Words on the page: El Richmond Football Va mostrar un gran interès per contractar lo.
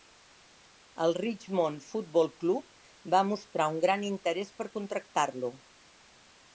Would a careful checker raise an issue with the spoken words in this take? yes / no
yes